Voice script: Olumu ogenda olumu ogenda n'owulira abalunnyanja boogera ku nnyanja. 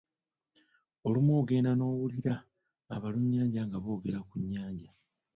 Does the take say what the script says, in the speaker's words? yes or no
no